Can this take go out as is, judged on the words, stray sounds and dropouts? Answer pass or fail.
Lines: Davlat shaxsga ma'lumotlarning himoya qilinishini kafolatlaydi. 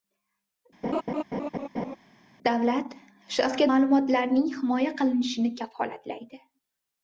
fail